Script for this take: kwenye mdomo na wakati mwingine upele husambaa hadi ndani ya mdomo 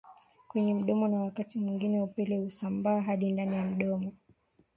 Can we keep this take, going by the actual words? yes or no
yes